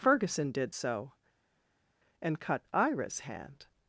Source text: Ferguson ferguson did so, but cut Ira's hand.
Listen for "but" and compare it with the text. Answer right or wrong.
wrong